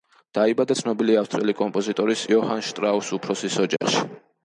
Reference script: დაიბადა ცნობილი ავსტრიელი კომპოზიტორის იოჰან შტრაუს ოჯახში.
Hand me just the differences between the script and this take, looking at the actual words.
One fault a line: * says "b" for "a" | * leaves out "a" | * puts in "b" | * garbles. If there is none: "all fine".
* puts in "უფროსის"